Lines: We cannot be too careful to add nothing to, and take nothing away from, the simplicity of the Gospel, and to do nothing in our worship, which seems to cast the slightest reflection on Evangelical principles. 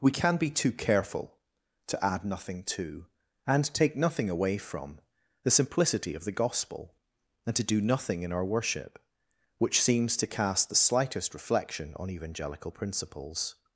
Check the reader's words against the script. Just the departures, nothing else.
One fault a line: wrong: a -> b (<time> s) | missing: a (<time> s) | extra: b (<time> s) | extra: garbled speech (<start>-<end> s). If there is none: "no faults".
wrong: cannot -> can (0.1 s)